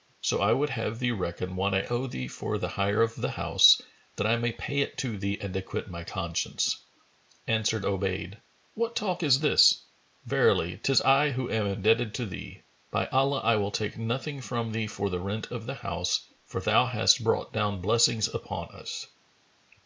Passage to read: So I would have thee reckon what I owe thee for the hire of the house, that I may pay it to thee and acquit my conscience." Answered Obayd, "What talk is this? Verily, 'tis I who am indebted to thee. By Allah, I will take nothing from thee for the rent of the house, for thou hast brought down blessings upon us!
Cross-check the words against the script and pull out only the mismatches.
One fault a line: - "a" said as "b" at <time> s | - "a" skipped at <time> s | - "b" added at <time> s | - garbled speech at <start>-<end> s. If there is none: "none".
none